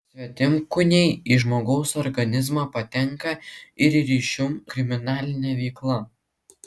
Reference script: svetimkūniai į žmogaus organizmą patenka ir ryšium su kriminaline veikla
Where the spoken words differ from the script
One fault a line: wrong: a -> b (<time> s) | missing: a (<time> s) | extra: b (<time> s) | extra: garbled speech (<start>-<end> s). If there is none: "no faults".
missing: su (4.5 s)